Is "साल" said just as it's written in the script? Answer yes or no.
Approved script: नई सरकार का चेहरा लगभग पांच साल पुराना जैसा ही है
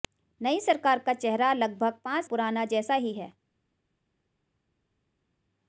no